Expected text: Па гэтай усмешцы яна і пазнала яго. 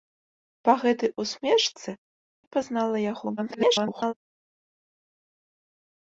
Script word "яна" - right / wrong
wrong